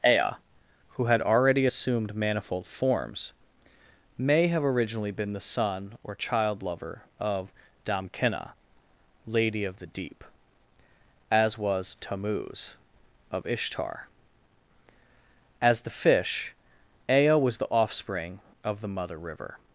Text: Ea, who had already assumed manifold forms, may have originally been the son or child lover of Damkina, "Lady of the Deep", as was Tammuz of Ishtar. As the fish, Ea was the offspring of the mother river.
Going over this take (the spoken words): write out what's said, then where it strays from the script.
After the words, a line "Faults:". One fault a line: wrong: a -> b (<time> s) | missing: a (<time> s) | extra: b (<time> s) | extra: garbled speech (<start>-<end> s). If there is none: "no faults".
Ea, who had already assumed manifold forms, may have originally been the son or child lover of Damkina, "Lady of the Deep", as was Tammuz of Ishtar. As the fish, Ea was the offspring of the mother river.
Faults:
no faults